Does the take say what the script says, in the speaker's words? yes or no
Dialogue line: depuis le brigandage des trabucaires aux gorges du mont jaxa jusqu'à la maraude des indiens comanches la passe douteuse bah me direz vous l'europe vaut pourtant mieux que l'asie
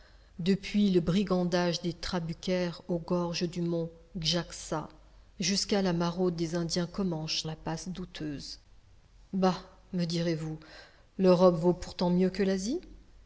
yes